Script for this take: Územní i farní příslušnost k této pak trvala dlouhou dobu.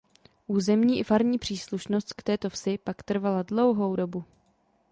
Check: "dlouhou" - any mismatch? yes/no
no